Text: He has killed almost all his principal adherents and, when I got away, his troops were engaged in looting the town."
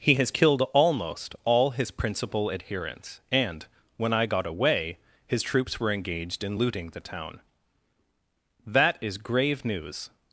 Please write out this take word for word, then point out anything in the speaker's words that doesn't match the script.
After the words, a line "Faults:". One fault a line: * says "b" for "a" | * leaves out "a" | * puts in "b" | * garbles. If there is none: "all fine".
He has killed almost all his principal adherents and, when I got away, his troops were engaged in looting the town." "That is grave news
Faults:
* puts in "That is grave news"